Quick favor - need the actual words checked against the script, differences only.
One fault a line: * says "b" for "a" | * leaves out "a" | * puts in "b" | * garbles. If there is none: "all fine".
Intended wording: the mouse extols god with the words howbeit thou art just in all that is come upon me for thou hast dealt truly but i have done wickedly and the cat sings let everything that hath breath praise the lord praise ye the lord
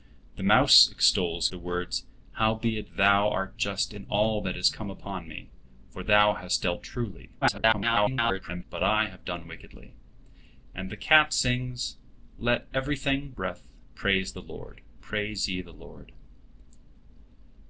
* leaves out "god with"
* garbles
* leaves out "that hath"